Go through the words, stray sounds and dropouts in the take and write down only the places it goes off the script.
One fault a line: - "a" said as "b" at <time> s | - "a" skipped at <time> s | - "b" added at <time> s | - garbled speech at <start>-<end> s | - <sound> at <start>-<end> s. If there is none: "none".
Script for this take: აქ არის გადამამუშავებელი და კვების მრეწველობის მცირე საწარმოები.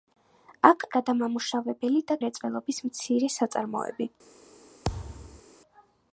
- "არის" skipped at 0.8 s
- "კვების" skipped at 2.2 s
- thud at 4.8-5.4 s